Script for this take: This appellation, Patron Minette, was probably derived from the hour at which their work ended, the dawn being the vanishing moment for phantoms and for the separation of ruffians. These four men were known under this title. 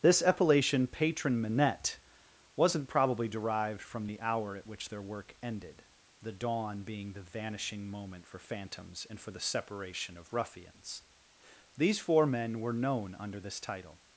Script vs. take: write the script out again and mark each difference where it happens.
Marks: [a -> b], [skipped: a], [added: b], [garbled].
This appellation, Patron Minette, [was -> wasn't] probably derived from the hour at which their work ended, the dawn being the vanishing moment for phantoms and for the separation of ruffians. These four men were known under this title.